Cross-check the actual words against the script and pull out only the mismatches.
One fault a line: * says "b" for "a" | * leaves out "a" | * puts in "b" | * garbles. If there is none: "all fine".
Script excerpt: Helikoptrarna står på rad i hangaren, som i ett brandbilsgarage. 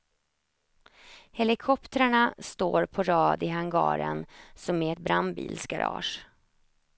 all fine